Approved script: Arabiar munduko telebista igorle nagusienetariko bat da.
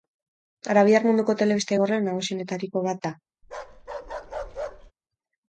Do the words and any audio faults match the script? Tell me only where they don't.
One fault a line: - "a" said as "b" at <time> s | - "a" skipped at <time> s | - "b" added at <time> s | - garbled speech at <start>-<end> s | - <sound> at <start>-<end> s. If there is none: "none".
- bark at 3.4-4.9 s